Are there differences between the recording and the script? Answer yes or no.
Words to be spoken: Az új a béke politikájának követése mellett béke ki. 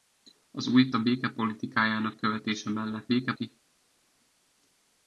no